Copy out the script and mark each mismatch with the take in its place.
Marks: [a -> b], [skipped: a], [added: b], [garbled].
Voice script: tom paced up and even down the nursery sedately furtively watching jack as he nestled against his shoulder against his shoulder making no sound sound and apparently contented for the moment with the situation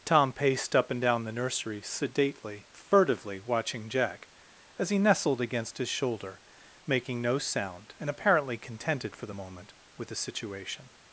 tom paced up and [skipped: even] down the nursery sedately furtively watching jack as he nestled against his shoulder [skipped: against his shoulder] making no sound [skipped: sound] and apparently contented for the moment with the situation